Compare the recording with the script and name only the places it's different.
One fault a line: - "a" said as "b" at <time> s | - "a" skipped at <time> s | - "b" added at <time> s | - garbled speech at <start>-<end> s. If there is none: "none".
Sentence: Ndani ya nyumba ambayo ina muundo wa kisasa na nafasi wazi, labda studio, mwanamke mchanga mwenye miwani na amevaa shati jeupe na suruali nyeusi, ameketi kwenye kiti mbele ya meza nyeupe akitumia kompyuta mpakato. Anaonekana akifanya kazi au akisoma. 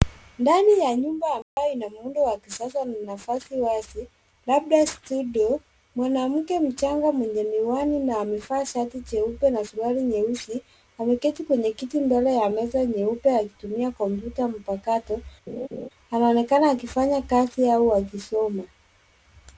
none